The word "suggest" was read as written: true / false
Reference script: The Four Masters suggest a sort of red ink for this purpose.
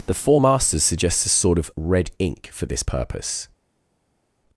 false